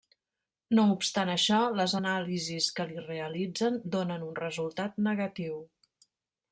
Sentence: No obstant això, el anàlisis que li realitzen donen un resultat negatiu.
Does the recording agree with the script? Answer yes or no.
no